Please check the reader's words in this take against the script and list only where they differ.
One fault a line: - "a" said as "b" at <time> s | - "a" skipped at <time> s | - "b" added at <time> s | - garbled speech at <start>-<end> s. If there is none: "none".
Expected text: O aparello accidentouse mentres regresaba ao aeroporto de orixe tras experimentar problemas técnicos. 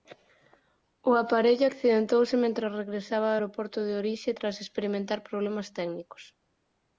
none